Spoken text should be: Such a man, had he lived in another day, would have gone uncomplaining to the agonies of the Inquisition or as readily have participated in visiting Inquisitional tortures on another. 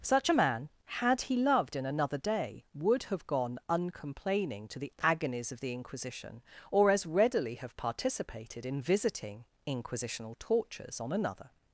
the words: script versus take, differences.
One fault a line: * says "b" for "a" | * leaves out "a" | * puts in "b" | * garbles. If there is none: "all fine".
* says "loved" for "lived"